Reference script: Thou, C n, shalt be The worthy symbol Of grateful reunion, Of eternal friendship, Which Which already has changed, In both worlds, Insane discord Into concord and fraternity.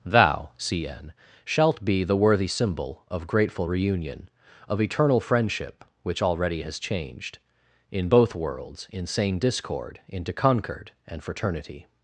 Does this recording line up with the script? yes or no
no